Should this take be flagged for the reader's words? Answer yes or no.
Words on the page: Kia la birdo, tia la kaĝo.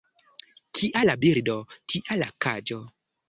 no